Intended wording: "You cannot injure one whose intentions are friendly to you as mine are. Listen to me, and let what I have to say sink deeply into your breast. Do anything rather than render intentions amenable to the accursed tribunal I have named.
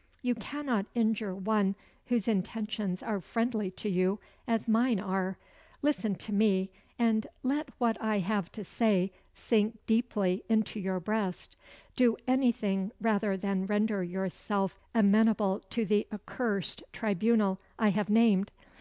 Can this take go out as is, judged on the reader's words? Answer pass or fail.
fail